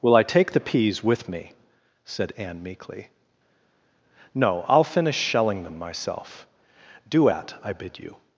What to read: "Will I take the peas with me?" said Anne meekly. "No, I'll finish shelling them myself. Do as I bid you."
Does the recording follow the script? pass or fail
fail